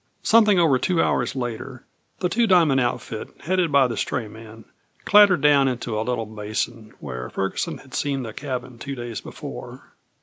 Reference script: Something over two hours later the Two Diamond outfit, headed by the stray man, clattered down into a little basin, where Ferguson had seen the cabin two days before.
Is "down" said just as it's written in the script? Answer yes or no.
yes